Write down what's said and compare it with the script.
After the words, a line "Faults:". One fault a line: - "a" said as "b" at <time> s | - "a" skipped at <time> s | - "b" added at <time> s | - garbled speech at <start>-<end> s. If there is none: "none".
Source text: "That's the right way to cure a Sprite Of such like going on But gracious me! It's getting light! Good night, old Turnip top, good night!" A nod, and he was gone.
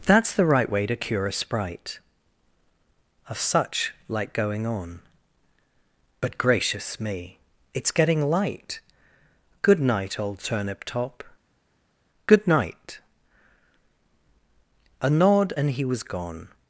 "That's the right way to cure a Sprite Of such like going on But gracious me! It's getting light! Good night, old Turnip top, good night!" A nod, and he was gone.
Faults:
none